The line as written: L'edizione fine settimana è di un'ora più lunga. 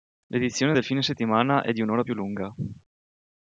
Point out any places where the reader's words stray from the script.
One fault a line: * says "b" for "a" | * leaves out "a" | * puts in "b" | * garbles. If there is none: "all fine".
* puts in "del"